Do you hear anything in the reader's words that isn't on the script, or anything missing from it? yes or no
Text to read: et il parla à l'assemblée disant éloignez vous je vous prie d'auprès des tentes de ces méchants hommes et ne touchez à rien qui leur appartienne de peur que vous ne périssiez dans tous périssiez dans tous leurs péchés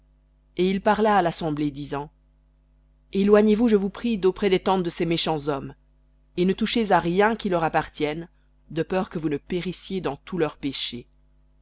yes